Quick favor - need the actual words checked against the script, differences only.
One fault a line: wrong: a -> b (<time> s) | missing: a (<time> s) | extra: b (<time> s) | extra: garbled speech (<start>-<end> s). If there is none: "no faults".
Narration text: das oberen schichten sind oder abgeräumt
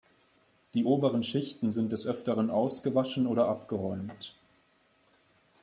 wrong: das -> die (0.7 s)
extra: des öfteren ausgewaschen (1.9 s)